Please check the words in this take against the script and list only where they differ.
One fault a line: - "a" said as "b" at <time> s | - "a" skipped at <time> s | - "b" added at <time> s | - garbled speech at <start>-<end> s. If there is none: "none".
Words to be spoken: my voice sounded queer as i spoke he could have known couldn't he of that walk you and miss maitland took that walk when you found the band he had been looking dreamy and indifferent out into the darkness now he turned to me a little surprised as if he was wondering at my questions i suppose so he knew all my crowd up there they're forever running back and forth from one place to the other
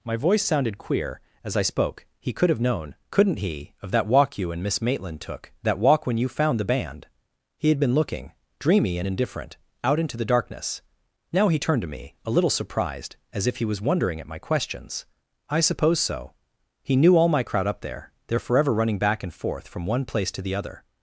none